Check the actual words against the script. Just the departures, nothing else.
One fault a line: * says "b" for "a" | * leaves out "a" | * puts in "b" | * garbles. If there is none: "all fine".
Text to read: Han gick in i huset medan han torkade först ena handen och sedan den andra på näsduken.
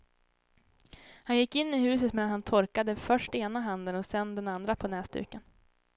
all fine